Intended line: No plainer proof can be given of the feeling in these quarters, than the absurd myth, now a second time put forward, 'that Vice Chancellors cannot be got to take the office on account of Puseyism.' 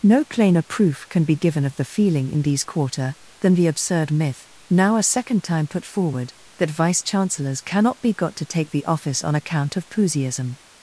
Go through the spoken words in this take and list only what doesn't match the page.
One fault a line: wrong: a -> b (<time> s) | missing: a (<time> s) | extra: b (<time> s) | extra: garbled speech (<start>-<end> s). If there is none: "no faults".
wrong: quarters -> quarter (2.6 s)